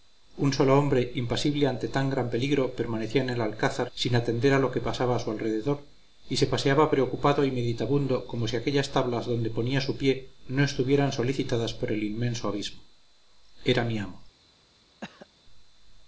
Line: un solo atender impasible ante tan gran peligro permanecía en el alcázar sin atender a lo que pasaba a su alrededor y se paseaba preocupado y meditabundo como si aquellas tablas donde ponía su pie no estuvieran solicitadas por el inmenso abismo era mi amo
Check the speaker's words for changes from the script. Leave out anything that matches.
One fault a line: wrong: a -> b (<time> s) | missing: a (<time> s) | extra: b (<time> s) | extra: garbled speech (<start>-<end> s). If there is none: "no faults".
wrong: atender -> hombre (0.8 s)